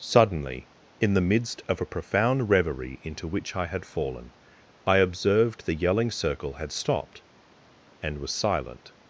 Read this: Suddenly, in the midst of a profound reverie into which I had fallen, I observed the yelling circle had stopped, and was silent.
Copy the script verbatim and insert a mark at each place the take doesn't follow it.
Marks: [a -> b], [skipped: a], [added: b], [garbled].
Suddenly, in the midst of a profound reverie into which I had fallen, I observed the yelling circle had stopped, and was silent.